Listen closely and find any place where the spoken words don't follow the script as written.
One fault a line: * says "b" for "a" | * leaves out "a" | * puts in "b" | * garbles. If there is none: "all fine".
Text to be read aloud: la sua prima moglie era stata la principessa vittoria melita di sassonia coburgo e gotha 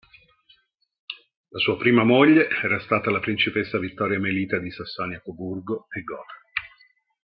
all fine